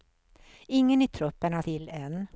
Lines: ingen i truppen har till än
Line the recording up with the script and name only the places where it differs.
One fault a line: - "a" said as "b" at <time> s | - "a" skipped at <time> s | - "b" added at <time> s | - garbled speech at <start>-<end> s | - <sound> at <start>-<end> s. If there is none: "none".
none